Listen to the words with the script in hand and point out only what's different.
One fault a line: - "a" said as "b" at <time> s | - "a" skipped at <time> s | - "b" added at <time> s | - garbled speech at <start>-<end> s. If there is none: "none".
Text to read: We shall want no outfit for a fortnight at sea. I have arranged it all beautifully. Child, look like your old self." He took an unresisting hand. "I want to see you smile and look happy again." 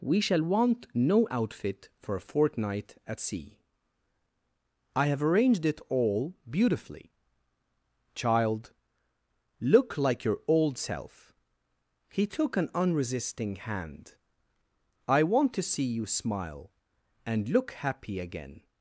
none